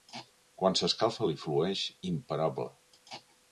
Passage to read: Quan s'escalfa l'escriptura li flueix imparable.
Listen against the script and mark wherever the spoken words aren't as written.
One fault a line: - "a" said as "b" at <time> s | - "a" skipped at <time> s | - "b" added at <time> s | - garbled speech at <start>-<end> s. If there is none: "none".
- "l'escriptura" skipped at 1.3 s